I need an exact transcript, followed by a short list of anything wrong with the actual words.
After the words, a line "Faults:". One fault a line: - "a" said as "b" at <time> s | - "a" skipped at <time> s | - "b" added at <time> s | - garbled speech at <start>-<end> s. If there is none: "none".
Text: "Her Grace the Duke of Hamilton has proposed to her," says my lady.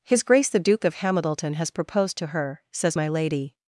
"His Grace the Duke of Hamilton has proposed to her," says my lady.
Faults:
- "Her" said as "His" at 0.0 s